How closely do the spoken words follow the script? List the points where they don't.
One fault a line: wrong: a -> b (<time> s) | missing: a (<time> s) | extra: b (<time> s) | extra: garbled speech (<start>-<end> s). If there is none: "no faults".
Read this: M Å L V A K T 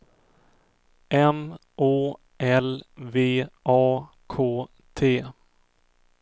no faults